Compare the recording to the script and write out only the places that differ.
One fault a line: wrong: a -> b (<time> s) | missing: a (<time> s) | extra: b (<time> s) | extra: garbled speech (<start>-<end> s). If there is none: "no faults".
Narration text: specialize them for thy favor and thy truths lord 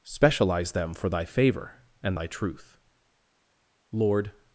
wrong: truths -> truth (2.3 s)